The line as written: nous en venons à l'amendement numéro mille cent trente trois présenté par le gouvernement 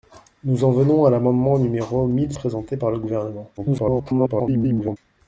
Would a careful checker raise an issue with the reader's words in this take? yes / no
yes